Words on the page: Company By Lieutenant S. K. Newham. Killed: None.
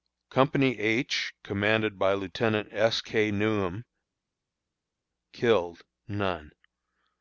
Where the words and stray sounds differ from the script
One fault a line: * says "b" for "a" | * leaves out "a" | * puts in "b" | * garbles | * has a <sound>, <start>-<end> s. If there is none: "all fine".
* puts in "H commanded"